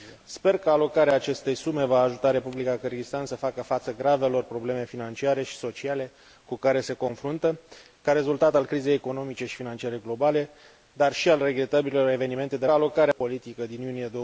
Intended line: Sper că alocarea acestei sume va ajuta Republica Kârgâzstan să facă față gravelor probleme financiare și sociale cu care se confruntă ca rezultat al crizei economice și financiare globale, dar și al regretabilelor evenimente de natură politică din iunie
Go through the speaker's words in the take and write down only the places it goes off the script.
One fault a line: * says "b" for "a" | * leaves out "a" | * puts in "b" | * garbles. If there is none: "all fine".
* says "alocarea" for "natură"